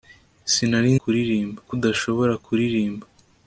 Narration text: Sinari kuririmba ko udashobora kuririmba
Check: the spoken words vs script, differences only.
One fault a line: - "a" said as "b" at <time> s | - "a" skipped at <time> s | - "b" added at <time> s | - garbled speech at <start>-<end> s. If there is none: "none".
none